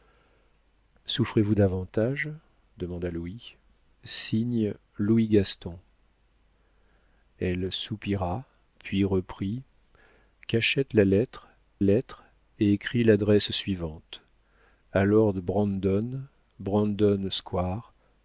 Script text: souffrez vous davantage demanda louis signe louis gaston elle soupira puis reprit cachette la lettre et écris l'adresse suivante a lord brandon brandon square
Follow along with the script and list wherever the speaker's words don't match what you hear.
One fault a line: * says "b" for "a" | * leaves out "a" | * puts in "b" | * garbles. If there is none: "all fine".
* puts in "lettre"